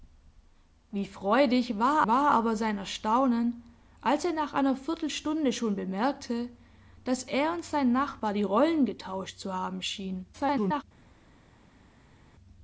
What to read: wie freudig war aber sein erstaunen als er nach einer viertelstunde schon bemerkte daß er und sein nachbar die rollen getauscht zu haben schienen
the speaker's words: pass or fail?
fail